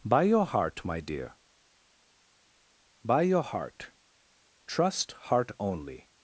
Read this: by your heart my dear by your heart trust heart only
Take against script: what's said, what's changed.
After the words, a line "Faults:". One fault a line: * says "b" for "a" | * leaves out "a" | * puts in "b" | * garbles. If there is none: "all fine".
by your heart my dear by your heart trust heart only
Faults:
all fine